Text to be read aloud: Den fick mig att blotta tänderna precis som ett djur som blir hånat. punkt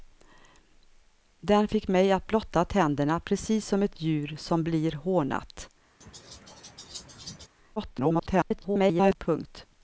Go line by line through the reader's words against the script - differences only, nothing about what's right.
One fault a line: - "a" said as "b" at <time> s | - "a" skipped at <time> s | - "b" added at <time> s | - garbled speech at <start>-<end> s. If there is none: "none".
- garbled speech at 7.8-9.2 s